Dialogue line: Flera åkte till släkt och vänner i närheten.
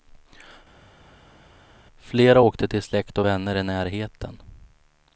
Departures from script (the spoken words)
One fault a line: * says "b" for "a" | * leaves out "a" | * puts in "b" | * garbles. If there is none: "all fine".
all fine